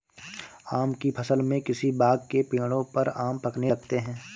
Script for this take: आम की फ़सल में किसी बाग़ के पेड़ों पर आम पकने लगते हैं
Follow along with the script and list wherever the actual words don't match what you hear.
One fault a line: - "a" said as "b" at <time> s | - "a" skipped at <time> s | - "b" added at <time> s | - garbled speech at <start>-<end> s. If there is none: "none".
none